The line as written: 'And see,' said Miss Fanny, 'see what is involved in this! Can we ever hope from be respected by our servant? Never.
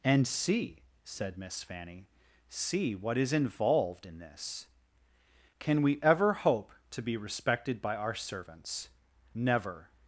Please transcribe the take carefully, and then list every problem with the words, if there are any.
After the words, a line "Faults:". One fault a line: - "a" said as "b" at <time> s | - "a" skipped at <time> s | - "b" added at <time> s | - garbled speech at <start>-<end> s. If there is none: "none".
'And see,' said Miss Fanny, 'see what is involved in this! Can we ever hope to be respected by our servants? Never.
Faults:
- "from" said as "to" at 6.9 s
- "servant" said as "servants" at 8.1 s